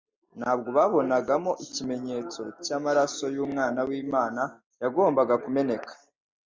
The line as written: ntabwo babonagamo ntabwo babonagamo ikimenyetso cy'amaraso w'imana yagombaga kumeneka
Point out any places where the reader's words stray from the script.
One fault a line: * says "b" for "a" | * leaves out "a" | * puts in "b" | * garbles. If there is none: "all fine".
* leaves out "ntabwo babonagamo"
* puts in "y'umwana"